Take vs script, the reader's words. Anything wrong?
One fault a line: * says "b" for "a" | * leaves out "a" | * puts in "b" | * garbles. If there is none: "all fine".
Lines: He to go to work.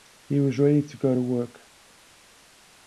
* puts in "was ready"